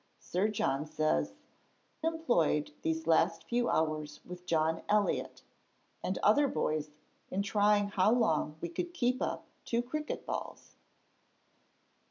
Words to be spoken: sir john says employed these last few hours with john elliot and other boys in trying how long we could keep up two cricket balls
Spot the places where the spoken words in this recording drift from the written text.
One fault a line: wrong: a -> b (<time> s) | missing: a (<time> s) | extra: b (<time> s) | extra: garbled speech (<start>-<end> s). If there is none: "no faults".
no faults